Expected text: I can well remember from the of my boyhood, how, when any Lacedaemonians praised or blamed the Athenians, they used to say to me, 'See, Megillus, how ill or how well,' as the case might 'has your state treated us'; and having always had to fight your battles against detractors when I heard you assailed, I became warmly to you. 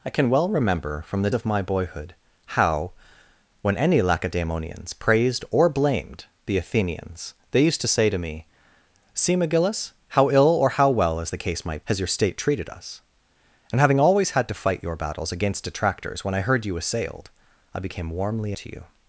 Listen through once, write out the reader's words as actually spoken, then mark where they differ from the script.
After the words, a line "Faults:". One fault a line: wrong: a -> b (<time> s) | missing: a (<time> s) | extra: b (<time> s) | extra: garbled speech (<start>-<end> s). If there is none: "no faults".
I can well remember from the of my boyhood, how, when any Lacedaemonians praised or blamed the Athenians, they used to say to me, 'See, Megillus, how ill or how well,' as the case might 'has your state treated us'; and having always had to fight your battles against detractors when I heard you assailed, I became warmly to you.
Faults:
no faults